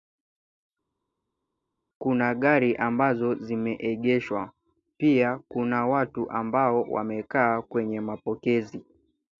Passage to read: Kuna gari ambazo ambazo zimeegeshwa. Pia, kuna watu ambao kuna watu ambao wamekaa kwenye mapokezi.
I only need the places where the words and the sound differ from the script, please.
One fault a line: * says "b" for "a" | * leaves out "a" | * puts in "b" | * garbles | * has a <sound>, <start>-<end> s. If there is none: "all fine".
* leaves out "ambazo"
* leaves out "kuna watu ambao"